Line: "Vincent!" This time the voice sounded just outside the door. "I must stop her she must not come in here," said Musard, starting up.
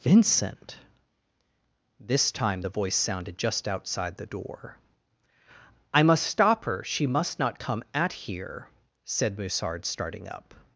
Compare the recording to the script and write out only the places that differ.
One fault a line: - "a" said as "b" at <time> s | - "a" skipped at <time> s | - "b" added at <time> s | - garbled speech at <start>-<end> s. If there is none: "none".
- "in" said as "at" at 7.9 s